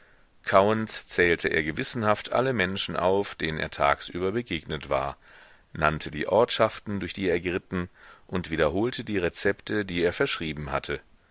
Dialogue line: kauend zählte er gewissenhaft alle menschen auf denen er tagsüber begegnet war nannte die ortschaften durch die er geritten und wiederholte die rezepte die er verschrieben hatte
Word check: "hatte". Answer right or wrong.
right